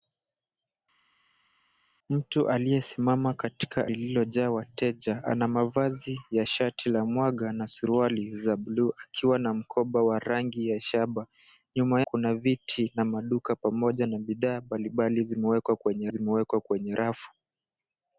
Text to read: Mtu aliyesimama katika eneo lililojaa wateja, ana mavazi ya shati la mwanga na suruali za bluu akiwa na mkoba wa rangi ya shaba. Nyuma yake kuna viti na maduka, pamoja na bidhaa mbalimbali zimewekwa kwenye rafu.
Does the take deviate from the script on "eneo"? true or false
true